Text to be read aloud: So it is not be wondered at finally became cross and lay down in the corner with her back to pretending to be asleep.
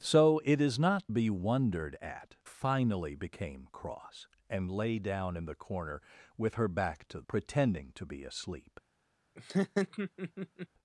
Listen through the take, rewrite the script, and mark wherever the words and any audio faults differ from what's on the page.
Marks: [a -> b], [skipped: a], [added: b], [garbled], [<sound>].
So it is not be wondered at finally became cross and lay down in the corner with her back to pretending to be asleep. [laugh]